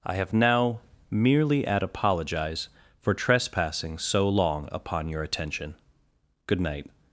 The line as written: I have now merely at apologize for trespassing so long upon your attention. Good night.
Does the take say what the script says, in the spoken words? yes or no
yes